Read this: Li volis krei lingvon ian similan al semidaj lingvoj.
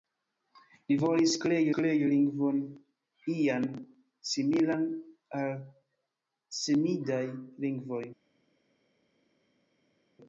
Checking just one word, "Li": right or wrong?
right